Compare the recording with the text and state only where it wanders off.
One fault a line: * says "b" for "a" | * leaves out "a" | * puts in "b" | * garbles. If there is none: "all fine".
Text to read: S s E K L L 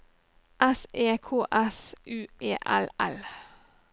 * puts in "E K"
* puts in "U"
* leaves out "K"